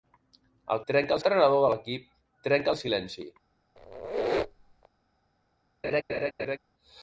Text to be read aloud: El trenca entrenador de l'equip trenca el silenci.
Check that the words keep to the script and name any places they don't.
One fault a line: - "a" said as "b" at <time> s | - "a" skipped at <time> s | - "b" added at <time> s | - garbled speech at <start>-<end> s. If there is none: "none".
none